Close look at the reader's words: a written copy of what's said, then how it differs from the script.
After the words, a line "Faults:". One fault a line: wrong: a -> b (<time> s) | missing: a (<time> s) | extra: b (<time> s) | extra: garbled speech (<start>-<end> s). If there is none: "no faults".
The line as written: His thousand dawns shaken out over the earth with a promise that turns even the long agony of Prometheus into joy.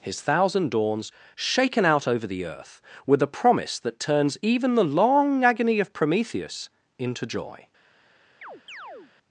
His thousand dawns shaken out over the earth with a promise that turns even the long agony of Prometheus into joy.
Faults:
no faults